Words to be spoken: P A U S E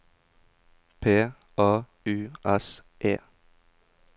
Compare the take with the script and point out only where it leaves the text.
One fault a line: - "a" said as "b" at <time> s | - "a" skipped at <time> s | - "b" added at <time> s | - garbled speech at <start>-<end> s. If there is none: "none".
none